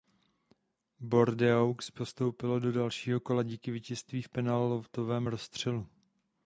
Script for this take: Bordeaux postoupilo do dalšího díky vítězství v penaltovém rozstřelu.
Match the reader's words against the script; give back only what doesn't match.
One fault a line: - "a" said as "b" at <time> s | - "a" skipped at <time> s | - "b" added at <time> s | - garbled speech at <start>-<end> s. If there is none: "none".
- "kola" added at 3.2 s